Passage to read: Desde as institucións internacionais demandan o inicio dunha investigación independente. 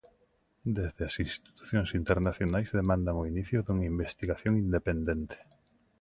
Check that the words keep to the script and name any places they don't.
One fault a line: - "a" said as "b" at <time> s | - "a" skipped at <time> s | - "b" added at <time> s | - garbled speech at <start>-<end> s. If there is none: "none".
none